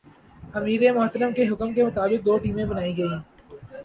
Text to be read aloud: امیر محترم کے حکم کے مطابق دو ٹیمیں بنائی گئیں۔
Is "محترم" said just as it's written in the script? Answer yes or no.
yes